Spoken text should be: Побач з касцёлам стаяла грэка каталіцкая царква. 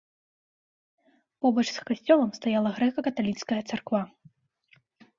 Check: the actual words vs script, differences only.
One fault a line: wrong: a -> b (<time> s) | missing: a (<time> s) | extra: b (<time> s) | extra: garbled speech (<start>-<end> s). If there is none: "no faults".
no faults